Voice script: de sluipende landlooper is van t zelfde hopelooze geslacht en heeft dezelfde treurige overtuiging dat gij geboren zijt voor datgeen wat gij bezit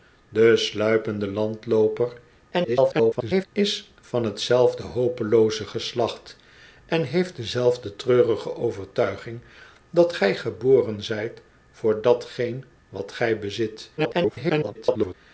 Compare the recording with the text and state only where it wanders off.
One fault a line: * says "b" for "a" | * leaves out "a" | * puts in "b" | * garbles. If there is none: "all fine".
* garbles
* garbles